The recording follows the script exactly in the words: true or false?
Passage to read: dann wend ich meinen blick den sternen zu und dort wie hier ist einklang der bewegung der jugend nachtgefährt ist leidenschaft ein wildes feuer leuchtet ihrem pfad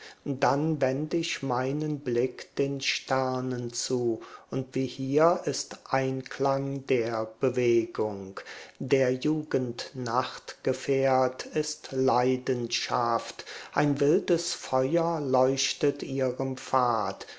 false